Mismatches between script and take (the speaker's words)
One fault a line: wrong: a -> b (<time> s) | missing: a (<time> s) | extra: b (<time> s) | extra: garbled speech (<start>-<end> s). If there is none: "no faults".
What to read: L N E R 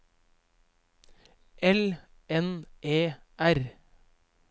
no faults